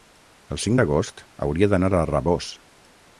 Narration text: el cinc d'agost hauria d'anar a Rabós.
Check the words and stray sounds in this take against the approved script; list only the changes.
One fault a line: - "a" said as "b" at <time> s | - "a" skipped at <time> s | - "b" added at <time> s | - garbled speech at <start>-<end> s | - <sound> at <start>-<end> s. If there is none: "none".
none